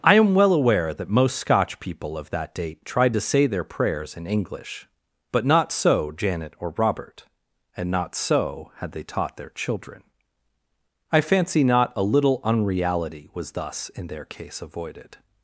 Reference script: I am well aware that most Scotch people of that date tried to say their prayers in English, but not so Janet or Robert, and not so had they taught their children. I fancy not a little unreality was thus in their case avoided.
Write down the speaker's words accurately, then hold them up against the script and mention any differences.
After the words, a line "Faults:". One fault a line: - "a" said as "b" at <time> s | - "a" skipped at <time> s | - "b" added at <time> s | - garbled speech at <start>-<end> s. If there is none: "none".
I am well aware that most Scotch people of that date tried to say their prayers in English, but not so Janet or Robert, and not so had they taught their children. I fancy not a little unreality was thus in their case avoided.
Faults:
none